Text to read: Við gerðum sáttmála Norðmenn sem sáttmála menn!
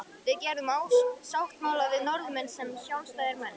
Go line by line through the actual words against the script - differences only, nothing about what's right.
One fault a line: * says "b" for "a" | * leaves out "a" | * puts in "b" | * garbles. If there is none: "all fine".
* puts in "við"
* says "sjálfstæðir" for "sáttmála"